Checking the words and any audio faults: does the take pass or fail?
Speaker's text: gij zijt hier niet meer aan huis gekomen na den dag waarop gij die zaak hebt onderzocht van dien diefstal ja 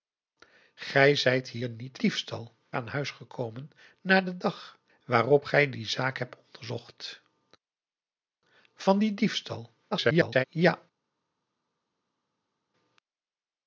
fail